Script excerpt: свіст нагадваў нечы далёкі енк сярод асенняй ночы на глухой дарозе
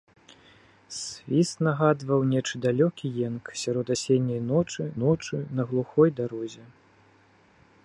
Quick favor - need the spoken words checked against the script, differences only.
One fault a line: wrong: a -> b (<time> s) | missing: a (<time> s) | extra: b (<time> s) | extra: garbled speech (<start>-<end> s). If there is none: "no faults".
extra: ночы (5.0 s)